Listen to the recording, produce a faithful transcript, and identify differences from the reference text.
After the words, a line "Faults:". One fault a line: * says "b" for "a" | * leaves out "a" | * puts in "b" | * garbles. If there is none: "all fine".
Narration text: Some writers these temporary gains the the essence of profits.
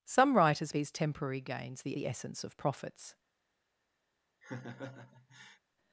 Some writers these temporary gains the the essence of profits.
Faults:
all fine